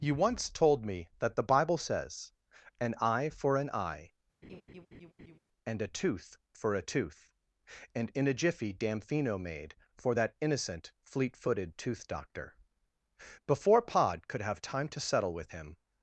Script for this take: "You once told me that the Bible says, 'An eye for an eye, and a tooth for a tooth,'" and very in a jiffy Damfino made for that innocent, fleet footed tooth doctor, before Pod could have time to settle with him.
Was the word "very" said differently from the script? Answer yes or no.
yes